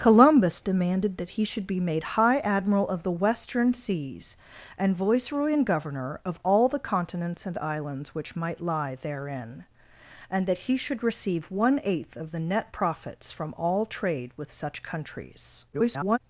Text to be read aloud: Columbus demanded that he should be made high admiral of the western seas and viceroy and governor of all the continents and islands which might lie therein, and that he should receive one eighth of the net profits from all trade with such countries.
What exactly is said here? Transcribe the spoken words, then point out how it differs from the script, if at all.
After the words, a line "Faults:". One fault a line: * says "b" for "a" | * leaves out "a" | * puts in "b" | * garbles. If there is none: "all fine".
Columbus demanded that he should be made high admiral of the western seas and viceroy and governor of all the continents and islands which might lie therein, and that he should receive one eighth of the net profits from all trade with such countries. [garbled]
Faults:
* garbles